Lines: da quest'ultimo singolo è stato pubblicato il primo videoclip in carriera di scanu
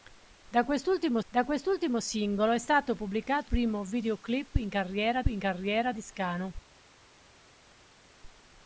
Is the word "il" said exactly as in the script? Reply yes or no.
no